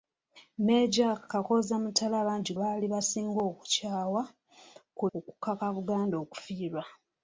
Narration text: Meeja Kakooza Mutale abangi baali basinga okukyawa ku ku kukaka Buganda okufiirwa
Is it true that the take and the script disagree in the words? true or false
false